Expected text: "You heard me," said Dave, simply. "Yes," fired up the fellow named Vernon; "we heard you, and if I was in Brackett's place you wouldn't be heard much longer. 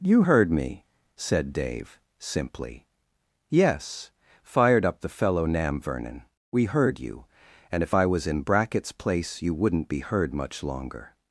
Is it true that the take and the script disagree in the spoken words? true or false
true